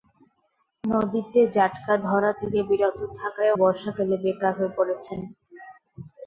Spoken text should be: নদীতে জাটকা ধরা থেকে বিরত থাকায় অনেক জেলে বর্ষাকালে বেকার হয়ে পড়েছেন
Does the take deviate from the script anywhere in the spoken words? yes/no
yes